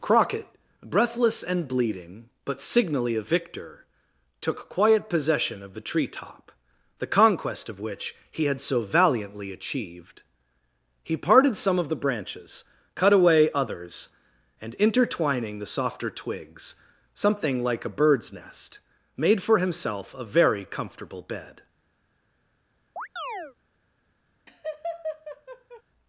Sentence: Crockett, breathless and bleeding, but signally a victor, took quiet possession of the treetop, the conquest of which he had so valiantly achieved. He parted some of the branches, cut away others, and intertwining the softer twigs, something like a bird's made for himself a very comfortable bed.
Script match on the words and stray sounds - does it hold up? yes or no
no